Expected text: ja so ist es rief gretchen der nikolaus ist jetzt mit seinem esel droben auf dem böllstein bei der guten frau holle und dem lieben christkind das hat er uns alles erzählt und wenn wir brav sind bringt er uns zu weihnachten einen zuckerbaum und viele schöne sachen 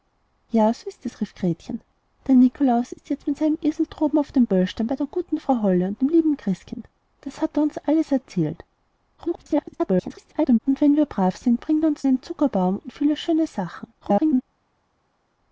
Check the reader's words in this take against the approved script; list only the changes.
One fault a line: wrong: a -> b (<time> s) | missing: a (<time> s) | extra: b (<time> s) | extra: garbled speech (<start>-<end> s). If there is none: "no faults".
extra: garbled speech (9.2-10.6 s)
missing: zu weihnachten (12.1 s)
extra: garbled speech (14.0-14.4 s)